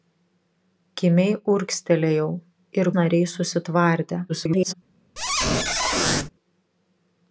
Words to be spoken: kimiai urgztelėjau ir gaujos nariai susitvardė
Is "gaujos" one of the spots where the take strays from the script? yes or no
yes